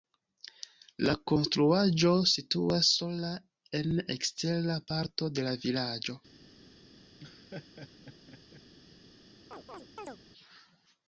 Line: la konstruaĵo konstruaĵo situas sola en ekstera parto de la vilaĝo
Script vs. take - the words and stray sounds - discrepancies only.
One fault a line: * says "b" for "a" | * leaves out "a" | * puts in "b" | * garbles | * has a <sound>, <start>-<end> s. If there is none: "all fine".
* leaves out "konstruaĵo"
* has a laugh, 7.2-8.6 s
* has a chirp, 9.5-10.2 s